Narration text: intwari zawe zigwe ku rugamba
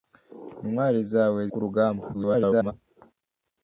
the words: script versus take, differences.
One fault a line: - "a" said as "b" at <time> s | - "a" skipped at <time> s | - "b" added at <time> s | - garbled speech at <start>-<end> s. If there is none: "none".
- "zigwe" skipped at 1.4 s
- garbled speech at 2.1-2.7 s